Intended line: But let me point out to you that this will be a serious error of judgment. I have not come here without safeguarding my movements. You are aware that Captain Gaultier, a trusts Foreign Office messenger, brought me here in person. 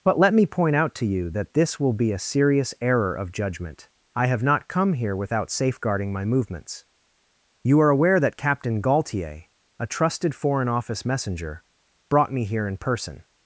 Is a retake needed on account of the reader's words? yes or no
yes